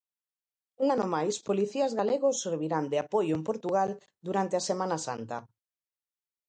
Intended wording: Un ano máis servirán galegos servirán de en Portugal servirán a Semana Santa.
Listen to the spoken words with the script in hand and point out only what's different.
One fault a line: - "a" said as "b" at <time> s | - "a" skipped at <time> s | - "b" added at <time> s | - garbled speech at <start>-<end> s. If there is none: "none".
- "servirán" said as "policías" at 1.5 s
- "apoio" added at 3.0 s
- "servirán" said as "durante" at 4.3 s